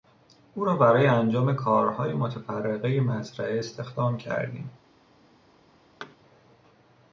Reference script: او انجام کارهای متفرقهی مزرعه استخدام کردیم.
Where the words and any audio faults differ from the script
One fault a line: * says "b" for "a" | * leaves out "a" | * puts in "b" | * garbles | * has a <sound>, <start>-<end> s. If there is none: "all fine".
* puts in "را برای"
* has a thud, 6.0-6.2 s